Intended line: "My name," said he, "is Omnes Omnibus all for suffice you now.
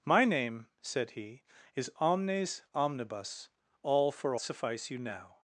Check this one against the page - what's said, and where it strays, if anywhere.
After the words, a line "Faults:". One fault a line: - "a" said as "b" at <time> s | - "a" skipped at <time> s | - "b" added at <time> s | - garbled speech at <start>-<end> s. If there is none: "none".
"My name," said he, "is Omnes Omnibus all for suffice you now.
Faults:
none